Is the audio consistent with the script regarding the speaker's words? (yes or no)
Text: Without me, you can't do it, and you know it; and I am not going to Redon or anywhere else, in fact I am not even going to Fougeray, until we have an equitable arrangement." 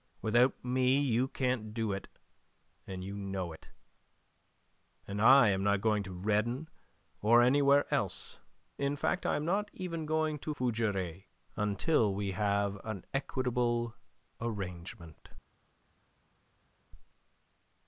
yes